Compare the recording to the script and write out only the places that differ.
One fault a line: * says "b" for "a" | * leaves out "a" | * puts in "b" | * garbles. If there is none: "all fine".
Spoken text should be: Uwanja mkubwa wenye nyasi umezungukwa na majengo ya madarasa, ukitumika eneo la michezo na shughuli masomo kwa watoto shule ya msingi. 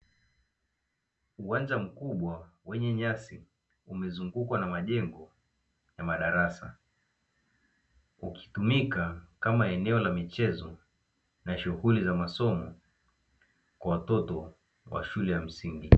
* puts in "kama"
* puts in "za"
* puts in "wa"